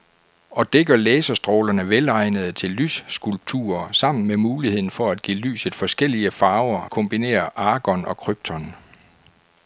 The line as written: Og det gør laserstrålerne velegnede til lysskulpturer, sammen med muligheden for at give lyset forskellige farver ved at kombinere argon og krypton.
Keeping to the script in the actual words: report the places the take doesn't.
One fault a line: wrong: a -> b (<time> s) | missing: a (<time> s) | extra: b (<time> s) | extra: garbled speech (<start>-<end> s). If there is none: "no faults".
missing: ved at (6.9 s)